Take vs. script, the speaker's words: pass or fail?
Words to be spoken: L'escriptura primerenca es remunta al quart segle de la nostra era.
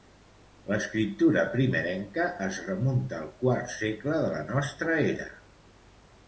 pass